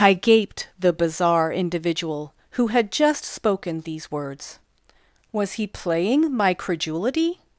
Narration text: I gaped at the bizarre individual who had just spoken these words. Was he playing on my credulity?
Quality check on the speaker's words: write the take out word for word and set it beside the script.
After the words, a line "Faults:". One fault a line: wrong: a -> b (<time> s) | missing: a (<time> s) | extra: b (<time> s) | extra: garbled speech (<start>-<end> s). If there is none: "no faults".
I gaped the bizarre individual who had just spoken these words. Was he playing my credulity?
Faults:
missing: at (0.7 s)
missing: on (6.3 s)